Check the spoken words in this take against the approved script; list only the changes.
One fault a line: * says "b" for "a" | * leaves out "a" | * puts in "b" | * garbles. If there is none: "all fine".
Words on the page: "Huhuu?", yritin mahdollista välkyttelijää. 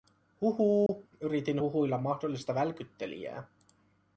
* puts in "huhuilla"